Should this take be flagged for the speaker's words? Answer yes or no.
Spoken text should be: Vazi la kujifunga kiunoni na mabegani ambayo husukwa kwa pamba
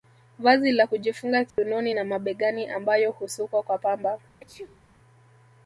no